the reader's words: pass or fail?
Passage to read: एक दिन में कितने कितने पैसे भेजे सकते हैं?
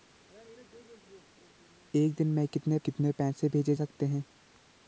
pass